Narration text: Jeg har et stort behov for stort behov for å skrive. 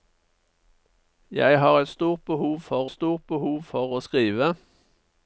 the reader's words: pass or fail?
pass